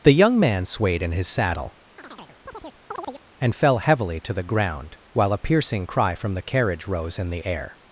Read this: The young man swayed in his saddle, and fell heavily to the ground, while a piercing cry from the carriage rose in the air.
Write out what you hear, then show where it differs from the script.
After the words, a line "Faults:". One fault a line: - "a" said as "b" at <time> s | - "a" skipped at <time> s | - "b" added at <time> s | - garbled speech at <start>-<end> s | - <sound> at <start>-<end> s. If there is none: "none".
The young man swayed in his saddle, and fell heavily to the ground, while a piercing cry from the carriage rose in the air.
Faults:
- chirp at 2.0-3.2 s